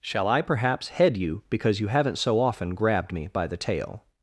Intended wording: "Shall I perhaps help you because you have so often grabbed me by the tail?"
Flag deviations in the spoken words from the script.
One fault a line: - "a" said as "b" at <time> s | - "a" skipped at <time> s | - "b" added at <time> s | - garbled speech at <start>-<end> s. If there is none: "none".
- "help" said as "head" at 0.9 s
- "have" said as "haven't" at 1.9 s